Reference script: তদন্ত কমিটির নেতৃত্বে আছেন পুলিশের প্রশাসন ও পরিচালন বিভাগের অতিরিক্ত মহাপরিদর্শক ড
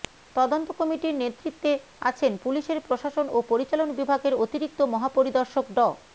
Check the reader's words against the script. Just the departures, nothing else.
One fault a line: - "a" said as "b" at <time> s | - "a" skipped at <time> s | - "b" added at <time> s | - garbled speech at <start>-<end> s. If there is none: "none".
none